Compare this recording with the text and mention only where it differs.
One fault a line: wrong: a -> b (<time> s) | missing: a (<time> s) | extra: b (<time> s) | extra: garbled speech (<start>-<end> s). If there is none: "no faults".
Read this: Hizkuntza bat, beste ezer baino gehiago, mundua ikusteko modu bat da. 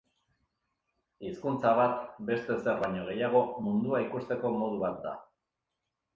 no faults